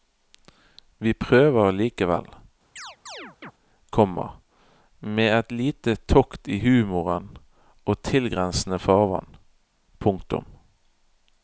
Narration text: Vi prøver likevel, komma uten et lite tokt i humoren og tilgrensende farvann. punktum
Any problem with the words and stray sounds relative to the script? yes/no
yes